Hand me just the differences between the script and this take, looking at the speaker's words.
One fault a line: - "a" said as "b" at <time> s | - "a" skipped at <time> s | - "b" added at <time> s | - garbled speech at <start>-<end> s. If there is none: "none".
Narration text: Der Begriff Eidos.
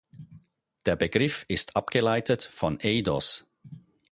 - "ist abgeleitet von" added at 1.5 s